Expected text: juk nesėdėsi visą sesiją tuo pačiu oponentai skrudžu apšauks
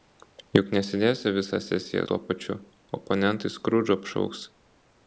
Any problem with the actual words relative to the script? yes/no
no